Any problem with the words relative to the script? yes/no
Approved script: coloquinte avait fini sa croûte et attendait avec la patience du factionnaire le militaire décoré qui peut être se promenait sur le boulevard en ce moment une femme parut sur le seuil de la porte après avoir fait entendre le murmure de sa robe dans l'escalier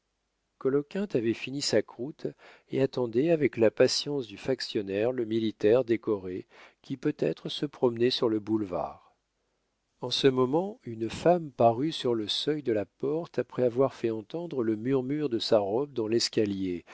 no